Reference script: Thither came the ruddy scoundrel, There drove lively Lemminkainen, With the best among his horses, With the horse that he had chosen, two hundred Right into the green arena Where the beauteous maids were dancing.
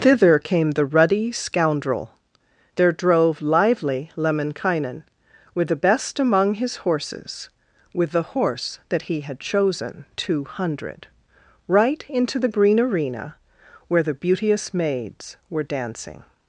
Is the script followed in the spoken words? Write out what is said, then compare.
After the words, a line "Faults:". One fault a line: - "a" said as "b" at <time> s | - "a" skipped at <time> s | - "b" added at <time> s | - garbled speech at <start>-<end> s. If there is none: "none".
Thither came the ruddy scoundrel, There drove lively Lemminkainen, With the best among his horses, With the horse that he had chosen, two hundred Right into the green arena Where the beauteous maids were dancing.
Faults:
none